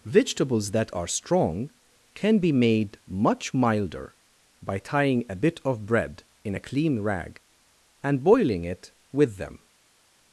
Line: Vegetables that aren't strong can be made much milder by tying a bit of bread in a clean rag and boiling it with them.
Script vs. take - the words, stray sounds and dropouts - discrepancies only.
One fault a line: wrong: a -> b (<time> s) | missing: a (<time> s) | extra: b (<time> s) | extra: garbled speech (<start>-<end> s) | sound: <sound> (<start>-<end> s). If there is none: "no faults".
wrong: aren't -> are (0.9 s)